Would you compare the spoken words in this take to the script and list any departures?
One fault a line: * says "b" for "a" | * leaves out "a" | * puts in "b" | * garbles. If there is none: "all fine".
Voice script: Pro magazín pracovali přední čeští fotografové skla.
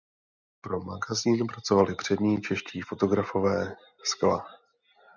all fine